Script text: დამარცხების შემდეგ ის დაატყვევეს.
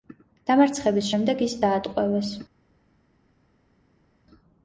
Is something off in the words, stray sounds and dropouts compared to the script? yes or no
no